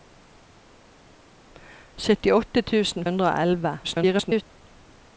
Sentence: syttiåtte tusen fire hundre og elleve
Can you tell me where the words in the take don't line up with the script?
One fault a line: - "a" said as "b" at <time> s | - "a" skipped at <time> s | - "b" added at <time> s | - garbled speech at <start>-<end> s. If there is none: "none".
- "fire" skipped at 3.0 s
- garbled speech at 3.8-4.4 s